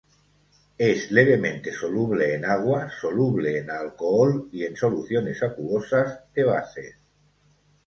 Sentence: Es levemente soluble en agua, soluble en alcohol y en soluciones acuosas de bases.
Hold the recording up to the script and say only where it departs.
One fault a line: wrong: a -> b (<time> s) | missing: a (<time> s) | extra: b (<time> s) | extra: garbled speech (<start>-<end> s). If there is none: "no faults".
no faults